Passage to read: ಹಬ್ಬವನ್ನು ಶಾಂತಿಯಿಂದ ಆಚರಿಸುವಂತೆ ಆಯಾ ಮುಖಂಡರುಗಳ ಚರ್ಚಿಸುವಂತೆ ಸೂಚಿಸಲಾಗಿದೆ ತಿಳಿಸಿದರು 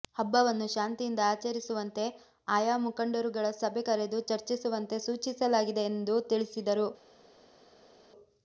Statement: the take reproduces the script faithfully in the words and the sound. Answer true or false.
false